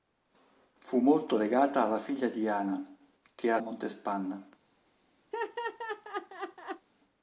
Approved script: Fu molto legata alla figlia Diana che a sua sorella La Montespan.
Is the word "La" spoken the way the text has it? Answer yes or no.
no